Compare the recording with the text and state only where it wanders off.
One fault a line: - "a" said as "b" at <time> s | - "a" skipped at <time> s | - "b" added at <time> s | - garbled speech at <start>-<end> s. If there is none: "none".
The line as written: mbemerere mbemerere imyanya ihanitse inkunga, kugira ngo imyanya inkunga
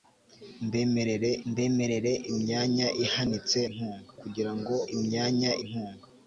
none